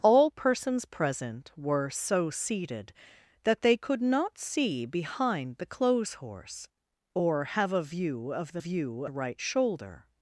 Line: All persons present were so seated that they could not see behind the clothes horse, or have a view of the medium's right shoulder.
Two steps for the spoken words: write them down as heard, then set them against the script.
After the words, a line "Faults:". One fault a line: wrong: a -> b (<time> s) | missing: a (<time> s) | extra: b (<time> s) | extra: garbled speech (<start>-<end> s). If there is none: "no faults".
All persons present were so seated that they could not see behind the clothes horse, or have a view of the view right shoulder.
Faults:
wrong: medium's -> view (8.6 s)